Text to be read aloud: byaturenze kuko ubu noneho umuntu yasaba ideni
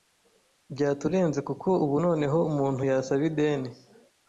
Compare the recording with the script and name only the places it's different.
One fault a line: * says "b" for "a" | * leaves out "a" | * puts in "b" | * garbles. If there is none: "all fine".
all fine